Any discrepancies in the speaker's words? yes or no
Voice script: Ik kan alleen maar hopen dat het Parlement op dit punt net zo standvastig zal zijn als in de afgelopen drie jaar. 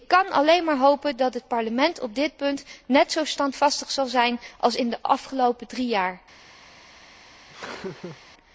no